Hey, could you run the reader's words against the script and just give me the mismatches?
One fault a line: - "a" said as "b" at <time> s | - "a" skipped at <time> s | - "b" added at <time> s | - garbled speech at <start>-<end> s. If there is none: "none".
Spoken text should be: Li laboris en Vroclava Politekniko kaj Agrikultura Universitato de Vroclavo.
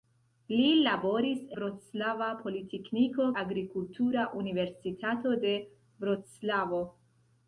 - "en" skipped at 1.4 s
- "kaj" skipped at 3.3 s